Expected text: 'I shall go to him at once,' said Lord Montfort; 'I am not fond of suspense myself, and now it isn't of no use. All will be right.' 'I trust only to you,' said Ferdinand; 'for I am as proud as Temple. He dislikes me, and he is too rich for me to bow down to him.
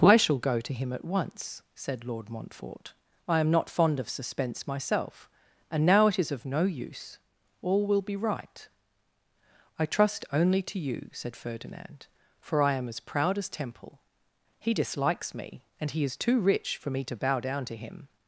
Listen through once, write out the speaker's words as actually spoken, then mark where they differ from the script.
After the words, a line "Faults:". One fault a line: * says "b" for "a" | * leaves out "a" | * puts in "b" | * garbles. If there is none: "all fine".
'I shall go to him at once,' said Lord Montfort; 'I am not fond of suspense myself, and now it is of no use. All will be right.' 'I trust only to you,' said Ferdinand; 'for I am as proud as Temple. He dislikes me, and he is too rich for me to bow down to him.
Faults:
* says "is" for "isn't"